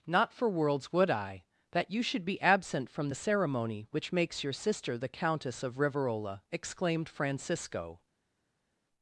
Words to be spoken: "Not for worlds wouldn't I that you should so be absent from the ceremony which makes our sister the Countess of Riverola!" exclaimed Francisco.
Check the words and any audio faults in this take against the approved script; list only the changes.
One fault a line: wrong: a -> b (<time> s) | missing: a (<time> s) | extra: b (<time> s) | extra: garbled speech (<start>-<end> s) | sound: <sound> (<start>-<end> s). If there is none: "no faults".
wrong: wouldn't -> would (0.9 s)
missing: so (2.2 s)
wrong: our -> your (4.4 s)